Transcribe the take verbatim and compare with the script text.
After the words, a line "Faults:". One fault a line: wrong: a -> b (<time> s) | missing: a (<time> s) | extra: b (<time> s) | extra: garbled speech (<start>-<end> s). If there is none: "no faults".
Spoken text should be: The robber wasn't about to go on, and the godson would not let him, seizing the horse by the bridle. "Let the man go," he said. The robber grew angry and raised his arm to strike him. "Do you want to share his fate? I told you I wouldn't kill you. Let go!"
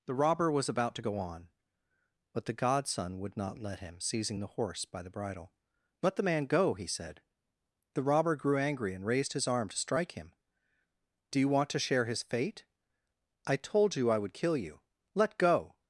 The robber was about to go on, but the godson would not let him, seizing the horse by the bridle. "Let the man go," he said. The robber grew angry and raised his arm to strike him. "Do you want to share his fate? I told you I would kill you. Let go!"
Faults:
wrong: wasn't -> was (0.5 s)
wrong: and -> but (2.3 s)
wrong: wouldn't -> would (14.2 s)